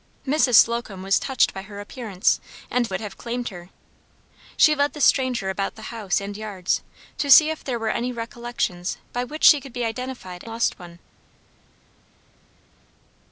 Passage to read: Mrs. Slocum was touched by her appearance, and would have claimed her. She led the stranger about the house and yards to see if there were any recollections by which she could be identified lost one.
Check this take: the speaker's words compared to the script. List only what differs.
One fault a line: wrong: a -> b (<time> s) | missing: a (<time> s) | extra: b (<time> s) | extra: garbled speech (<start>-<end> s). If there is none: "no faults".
no faults